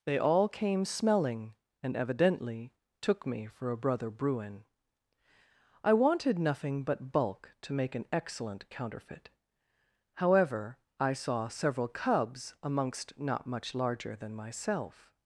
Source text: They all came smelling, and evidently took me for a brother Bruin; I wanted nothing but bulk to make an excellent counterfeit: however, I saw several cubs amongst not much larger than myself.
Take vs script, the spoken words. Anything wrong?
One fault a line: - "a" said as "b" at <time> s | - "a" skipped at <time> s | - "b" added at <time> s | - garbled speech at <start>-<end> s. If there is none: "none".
none